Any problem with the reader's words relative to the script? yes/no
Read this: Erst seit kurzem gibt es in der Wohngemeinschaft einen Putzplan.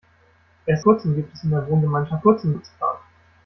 yes